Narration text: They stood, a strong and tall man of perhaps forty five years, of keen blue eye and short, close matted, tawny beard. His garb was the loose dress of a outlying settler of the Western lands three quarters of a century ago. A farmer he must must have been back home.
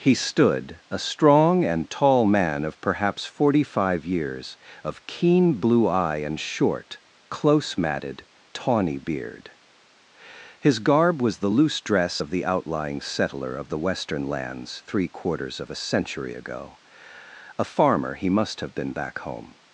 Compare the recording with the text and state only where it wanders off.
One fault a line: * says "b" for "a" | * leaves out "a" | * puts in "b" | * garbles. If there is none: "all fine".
* says "He" for "They"
* says "the" for "a"
* leaves out "must"